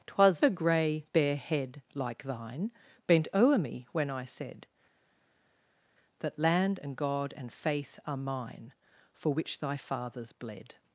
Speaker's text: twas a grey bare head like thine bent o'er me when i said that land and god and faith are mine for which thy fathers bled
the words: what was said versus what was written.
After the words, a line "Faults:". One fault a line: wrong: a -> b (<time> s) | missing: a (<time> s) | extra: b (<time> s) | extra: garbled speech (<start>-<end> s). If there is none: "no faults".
twas a grey bare head like thine bent o'er me when i said that land and god and faith are mine for which thy fathers bled
Faults:
no faults